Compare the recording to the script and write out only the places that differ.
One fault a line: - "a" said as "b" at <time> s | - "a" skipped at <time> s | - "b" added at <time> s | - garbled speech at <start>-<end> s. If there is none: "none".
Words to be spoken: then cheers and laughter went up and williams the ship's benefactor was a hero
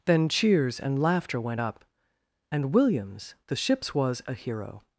- "benefactor" skipped at 3.9 s